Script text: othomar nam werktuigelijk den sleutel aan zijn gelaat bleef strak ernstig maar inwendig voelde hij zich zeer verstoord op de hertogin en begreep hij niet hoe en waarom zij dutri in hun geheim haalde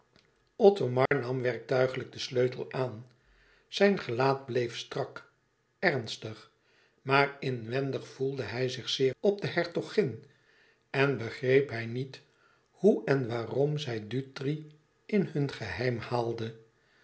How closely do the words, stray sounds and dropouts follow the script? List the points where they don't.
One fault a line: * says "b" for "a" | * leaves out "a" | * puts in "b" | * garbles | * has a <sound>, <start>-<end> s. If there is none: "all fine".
* has a dropout, 1.1-1.1 s
* leaves out "verstoord"